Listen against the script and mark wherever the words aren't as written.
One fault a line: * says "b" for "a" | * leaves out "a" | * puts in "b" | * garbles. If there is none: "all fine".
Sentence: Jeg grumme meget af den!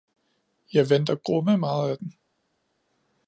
* puts in "venter"